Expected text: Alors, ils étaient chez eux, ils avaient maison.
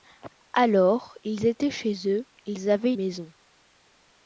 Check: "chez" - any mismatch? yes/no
no